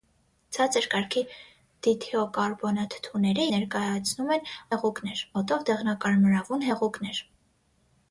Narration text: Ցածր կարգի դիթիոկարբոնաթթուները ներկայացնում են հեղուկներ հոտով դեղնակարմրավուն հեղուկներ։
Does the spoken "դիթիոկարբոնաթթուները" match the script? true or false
true